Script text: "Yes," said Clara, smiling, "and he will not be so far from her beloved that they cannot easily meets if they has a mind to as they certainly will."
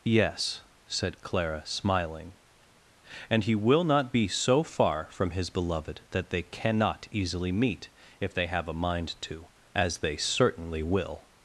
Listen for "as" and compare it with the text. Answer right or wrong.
right